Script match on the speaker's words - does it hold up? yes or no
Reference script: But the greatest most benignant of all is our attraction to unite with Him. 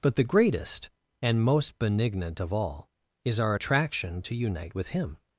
no